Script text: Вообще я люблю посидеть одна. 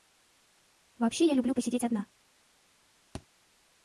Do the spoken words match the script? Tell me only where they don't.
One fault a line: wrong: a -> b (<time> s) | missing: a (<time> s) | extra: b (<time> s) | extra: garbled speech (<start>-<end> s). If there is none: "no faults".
no faults